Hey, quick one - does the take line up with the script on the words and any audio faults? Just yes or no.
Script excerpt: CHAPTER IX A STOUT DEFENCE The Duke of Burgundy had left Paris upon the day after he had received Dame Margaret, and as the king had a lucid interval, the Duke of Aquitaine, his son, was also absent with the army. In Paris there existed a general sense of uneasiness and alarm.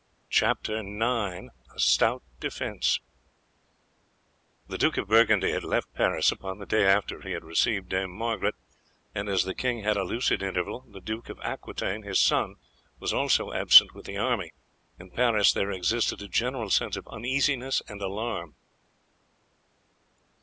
yes